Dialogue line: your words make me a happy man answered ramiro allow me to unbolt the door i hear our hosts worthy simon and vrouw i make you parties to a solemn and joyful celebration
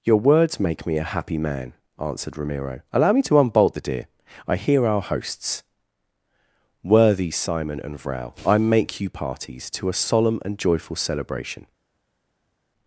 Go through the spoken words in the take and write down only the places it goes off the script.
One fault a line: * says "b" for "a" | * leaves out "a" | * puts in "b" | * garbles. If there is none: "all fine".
* says "deer" for "door"